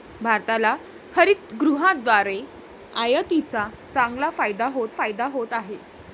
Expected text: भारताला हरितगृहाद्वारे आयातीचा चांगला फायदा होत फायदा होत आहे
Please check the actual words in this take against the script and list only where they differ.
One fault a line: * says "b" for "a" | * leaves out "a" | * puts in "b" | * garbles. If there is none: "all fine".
all fine